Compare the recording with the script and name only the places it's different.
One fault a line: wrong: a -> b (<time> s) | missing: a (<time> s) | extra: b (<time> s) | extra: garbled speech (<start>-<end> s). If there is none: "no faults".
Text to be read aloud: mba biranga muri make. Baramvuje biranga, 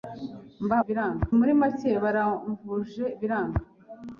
no faults